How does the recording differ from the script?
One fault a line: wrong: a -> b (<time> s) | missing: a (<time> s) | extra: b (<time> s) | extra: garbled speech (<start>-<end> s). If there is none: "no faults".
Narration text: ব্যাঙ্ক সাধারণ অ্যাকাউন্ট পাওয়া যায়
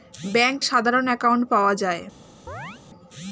no faults